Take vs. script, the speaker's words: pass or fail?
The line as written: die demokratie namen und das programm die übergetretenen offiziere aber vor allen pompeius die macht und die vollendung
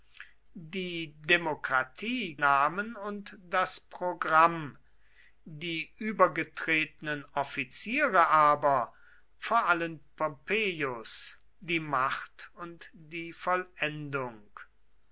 pass